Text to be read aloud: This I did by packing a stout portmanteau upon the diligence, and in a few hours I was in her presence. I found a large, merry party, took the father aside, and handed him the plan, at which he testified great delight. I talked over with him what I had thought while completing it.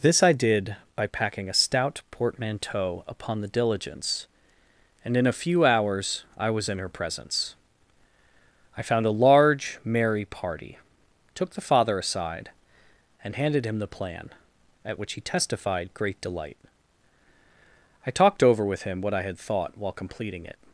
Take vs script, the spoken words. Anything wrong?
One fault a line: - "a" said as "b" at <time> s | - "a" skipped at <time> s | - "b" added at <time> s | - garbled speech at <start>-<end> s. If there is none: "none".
none